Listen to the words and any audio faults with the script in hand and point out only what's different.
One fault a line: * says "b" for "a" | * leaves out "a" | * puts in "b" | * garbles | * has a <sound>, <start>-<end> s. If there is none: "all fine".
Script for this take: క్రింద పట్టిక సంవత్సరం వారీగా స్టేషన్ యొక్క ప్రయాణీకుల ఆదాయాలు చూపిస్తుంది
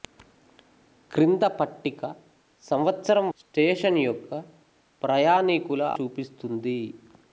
* leaves out "వారీగా"
* leaves out "ఆదాయాలు"